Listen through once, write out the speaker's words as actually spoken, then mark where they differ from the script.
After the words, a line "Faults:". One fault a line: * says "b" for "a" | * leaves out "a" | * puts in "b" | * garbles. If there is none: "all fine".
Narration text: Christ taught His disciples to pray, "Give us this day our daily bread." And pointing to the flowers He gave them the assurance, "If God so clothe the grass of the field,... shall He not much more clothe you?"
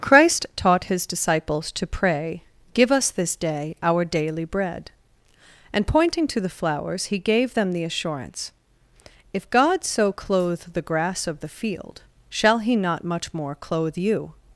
Christ taught His disciples to pray, "Give us this day our daily bread." And pointing to the flowers He gave them the assurance, "If God so clothe the grass of the field,... shall He not much more clothe you?"
Faults:
all fine